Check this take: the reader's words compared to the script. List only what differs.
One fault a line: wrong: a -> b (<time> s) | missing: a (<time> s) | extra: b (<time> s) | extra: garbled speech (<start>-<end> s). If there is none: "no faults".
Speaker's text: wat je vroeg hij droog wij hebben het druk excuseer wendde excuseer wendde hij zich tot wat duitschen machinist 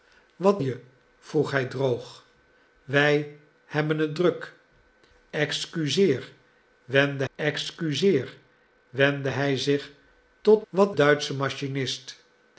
no faults